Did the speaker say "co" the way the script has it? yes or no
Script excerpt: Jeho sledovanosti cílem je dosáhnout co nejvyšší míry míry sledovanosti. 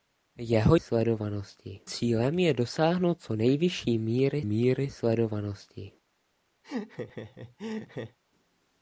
yes